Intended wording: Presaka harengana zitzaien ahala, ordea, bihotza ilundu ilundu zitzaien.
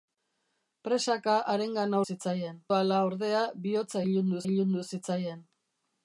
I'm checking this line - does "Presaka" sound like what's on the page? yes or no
yes